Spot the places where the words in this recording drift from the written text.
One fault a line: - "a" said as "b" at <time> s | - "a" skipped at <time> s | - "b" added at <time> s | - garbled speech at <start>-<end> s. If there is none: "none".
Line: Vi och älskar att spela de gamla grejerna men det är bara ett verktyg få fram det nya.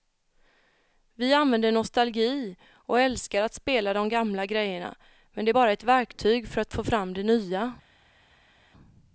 - "använder nostalgi" added at 1.3 s
- "för att" added at 6.5 s